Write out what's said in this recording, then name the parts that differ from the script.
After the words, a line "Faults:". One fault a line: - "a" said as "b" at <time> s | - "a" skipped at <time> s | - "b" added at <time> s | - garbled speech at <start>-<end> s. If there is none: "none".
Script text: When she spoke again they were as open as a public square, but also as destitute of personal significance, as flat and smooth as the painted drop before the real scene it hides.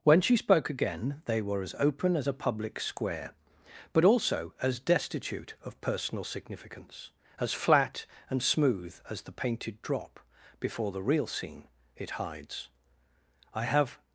When she spoke again they were as open as a public square, but also as destitute of personal significance, as flat and smooth as the painted drop before the real scene it hides. "I have
Faults:
- "I have" added at 13.5 s